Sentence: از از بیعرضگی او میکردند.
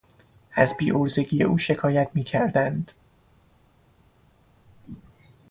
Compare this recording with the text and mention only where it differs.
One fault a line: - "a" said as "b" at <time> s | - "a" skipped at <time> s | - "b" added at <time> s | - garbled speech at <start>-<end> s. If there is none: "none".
- "از" skipped at 0.8 s
- "شکایت" added at 1.6 s